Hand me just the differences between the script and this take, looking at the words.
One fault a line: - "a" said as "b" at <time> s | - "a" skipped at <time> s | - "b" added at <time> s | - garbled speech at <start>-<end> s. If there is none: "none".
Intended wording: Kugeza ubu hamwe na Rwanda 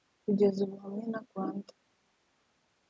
none